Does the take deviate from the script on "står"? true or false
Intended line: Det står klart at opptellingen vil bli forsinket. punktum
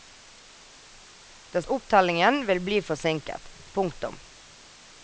true